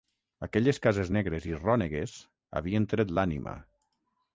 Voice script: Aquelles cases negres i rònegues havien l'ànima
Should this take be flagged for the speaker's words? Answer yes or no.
yes